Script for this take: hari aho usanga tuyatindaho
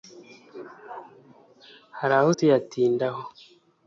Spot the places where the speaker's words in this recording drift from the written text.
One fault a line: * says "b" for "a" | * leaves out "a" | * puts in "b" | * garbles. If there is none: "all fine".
* leaves out "usanga"